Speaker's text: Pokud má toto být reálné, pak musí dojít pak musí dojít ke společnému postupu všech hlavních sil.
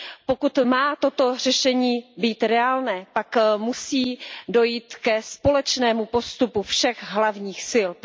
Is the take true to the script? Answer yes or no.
no